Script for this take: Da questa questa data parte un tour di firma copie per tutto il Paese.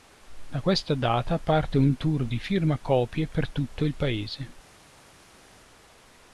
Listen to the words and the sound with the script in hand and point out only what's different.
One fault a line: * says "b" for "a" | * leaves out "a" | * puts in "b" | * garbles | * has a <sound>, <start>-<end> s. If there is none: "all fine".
* leaves out "questa"